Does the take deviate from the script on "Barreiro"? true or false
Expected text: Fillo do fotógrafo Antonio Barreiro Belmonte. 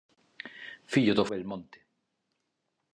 true